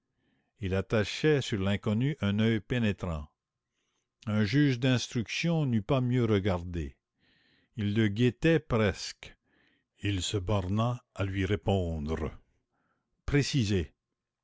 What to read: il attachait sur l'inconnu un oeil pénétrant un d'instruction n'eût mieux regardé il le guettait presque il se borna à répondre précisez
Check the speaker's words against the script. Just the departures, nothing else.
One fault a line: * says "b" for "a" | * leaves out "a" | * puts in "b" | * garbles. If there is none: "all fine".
* puts in "juge"
* puts in "pas"
* puts in "lui"